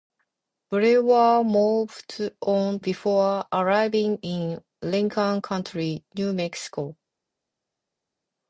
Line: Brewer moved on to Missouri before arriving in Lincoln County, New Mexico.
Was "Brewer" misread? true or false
false